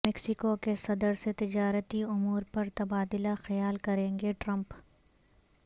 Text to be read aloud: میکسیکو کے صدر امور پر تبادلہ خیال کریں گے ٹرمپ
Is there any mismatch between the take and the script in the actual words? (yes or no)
yes